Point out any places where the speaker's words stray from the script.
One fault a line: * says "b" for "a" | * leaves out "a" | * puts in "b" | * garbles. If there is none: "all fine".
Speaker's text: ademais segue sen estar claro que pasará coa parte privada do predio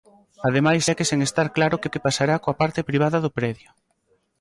* puts in "que"